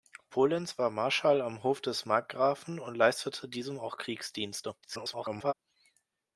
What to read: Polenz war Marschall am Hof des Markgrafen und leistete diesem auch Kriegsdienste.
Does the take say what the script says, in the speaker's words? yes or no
no